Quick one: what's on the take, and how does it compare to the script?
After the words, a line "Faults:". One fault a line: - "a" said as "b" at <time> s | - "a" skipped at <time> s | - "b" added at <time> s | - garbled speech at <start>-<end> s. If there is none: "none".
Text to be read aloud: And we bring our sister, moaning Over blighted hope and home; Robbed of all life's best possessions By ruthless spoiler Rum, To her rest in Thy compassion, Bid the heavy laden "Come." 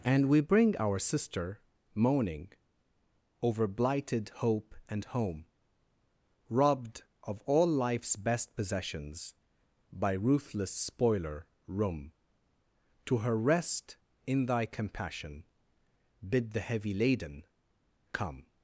And we bring our sister, moaning Over blighted hope and home; Robbed of all life's best possessions By ruthless spoiler Rum, To her rest in Thy compassion, Bid the heavy laden "Come."
Faults:
none